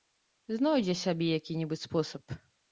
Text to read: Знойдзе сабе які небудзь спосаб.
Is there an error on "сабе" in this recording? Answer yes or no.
no